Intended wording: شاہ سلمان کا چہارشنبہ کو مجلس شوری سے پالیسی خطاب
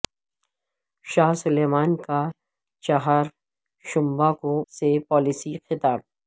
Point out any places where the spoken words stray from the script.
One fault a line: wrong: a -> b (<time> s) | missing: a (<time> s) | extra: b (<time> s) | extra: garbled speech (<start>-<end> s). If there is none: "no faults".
missing: مجلس شوری (4.5 s)